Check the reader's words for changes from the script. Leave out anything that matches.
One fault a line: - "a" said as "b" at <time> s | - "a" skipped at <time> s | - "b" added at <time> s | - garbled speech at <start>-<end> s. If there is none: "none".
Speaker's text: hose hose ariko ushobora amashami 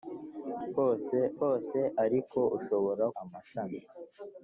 none